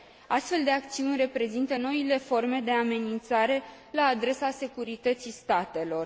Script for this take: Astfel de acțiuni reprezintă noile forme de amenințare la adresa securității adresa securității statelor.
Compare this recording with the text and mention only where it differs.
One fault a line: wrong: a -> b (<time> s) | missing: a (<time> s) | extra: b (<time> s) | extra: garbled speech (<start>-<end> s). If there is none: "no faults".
missing: adresa securității (5.3 s)